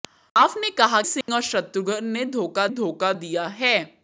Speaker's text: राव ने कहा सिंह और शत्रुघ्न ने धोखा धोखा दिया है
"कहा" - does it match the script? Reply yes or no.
yes